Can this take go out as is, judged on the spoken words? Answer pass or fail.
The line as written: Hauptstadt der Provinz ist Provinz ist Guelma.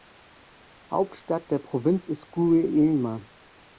fail